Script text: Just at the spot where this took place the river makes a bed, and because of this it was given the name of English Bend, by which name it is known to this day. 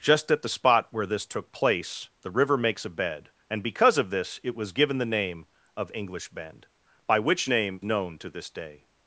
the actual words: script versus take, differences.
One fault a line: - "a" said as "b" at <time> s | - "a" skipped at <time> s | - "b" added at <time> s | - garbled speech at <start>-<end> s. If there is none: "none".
- "it is" skipped at 7.8 s